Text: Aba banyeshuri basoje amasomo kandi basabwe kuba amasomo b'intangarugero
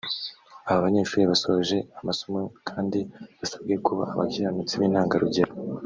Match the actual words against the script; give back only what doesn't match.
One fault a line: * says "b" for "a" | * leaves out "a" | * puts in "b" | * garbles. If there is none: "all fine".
* says "abakiranutsi" for "amasomo"